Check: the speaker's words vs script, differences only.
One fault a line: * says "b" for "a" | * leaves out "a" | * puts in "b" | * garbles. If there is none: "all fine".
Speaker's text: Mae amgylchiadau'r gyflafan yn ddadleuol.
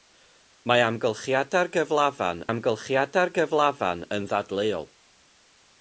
* puts in "amgylchiadau'r gyflafan"